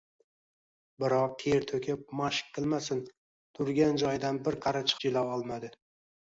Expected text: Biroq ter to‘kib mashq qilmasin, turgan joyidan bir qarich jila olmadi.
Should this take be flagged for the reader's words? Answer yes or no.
no